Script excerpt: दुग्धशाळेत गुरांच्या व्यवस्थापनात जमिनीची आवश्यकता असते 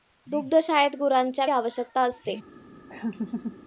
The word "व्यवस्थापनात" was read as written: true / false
false